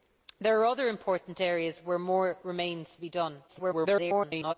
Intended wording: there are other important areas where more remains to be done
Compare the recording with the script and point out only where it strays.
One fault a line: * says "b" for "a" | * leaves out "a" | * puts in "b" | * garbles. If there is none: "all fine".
* leaves out "to"
* garbles